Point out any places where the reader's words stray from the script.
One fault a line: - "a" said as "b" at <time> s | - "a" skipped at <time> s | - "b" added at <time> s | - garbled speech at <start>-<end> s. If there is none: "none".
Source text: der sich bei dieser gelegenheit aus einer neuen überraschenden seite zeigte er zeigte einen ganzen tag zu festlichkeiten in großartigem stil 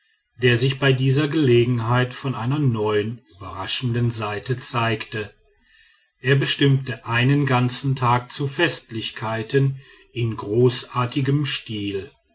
- "aus" said as "von" at 2.1 s
- "zeigte" said as "bestimmte" at 6.4 s